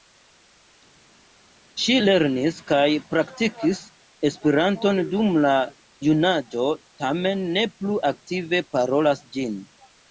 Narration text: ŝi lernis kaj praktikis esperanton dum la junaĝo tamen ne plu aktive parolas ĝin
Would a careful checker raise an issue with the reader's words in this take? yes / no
no